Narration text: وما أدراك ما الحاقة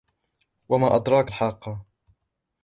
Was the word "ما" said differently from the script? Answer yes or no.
yes